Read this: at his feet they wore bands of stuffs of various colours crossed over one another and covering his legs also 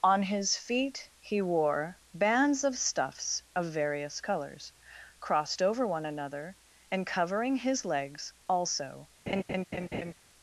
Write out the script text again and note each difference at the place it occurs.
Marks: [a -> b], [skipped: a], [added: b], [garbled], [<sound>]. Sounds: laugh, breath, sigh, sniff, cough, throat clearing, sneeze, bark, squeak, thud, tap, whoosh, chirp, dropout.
[at -> on] his feet [they -> he] wore bands of stuffs of various colours crossed over one another and covering his legs also [laugh]